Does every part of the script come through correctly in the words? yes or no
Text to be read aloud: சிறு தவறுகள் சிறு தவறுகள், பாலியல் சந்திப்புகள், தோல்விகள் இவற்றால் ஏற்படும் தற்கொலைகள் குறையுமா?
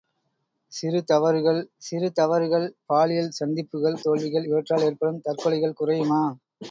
yes